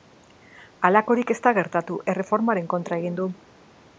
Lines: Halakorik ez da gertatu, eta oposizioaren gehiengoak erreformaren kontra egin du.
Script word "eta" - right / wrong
wrong